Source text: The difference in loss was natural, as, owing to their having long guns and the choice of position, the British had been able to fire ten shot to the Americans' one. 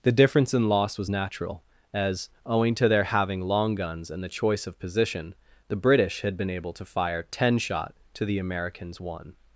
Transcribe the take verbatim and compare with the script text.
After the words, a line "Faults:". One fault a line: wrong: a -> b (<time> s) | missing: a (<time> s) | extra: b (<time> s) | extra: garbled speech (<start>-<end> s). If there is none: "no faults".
The difference in loss was natural, as, owing to their having long guns and the choice of position, the British had been able to fire ten shot to the Americans' one.
Faults:
no faults